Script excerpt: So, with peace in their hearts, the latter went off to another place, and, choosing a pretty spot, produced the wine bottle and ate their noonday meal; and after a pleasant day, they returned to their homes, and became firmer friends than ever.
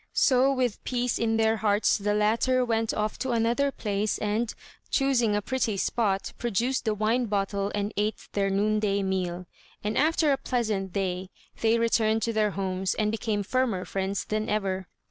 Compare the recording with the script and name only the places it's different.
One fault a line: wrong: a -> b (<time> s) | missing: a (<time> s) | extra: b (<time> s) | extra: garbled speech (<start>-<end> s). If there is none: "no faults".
no faults